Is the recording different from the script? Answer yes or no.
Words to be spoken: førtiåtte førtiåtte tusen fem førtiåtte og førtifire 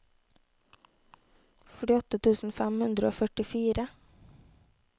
yes